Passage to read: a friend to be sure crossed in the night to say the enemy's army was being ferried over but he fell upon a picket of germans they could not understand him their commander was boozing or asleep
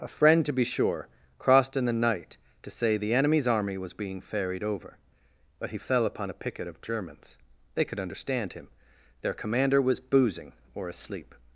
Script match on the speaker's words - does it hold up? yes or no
no